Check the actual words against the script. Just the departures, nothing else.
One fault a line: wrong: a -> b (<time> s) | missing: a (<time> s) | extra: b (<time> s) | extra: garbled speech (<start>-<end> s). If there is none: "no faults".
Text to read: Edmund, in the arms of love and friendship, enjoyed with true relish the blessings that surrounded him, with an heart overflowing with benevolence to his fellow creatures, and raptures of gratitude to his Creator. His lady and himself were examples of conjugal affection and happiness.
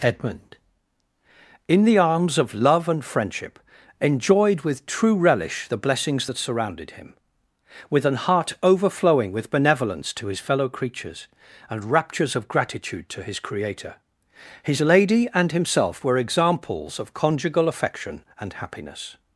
no faults